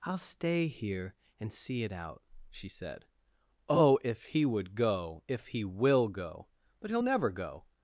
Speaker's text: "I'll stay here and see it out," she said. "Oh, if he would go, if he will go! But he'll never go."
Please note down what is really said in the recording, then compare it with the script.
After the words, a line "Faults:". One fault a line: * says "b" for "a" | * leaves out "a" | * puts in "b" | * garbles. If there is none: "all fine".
"I'll stay here and see it out," she said. "Oh, if he would go, if he will go! But he'll never go."
Faults:
all fine